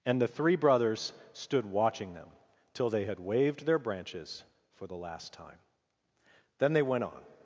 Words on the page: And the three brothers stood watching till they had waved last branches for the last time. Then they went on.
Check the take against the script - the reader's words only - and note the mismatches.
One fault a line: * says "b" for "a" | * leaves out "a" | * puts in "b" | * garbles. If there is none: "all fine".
* puts in "them"
* says "their" for "last"